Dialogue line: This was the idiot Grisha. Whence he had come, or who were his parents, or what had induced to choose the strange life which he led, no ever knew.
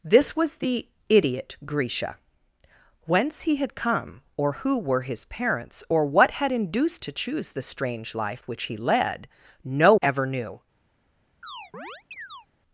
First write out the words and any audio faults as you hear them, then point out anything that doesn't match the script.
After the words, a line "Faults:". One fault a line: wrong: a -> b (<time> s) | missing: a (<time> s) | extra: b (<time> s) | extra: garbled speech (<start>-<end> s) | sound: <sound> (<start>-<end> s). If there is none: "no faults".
This was the idiot Grisha. Whence he had come, or who were his parents, or what had induced to choose the strange life which he led, no ever knew.
Faults:
sound: chirp (11.4-12.5 s)